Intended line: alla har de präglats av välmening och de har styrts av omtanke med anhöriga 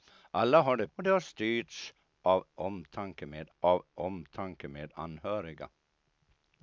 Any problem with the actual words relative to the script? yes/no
yes